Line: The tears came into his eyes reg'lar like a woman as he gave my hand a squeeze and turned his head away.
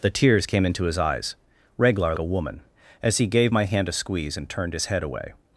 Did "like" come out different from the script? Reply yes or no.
yes